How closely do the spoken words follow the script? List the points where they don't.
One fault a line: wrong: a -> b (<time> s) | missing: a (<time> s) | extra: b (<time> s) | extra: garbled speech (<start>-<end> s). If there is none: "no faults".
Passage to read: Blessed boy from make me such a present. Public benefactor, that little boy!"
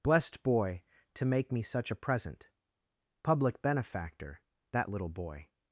wrong: from -> to (1.1 s)